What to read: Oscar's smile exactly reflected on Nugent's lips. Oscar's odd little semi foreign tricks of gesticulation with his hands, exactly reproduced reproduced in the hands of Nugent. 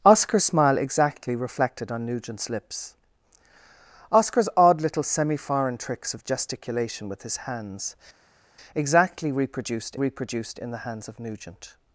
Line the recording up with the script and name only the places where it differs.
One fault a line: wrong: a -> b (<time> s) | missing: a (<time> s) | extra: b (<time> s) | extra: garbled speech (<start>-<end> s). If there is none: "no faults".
no faults